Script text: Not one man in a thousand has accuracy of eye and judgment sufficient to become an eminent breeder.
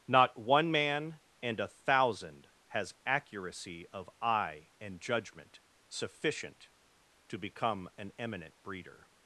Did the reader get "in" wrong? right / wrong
wrong